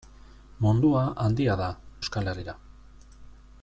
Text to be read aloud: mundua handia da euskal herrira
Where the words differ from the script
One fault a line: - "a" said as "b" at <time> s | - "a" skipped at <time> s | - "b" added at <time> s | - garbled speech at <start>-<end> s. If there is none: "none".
none